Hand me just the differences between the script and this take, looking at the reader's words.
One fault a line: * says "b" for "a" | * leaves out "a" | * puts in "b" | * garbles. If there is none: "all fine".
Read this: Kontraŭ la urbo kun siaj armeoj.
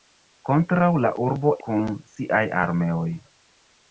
all fine